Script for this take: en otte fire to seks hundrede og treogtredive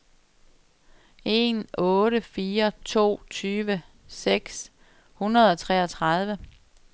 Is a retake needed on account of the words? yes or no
yes